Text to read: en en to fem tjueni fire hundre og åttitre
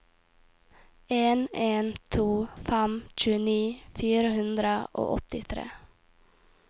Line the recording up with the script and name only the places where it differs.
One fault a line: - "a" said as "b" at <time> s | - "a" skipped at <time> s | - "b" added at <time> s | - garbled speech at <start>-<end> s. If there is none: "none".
none